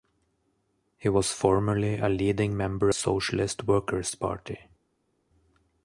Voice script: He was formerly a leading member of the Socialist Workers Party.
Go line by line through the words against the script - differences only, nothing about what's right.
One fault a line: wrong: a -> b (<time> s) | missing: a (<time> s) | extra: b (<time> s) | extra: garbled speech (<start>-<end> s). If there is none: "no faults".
missing: of the (2.9 s)